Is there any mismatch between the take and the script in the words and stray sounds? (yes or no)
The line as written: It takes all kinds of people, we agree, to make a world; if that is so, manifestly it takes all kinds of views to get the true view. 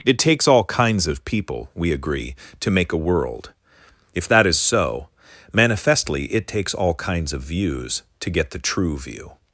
no